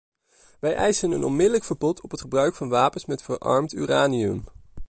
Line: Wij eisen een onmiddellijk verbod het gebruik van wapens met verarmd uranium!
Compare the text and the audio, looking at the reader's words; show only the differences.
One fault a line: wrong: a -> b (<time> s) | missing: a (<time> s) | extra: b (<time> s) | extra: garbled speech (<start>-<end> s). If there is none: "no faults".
extra: op (2.0 s)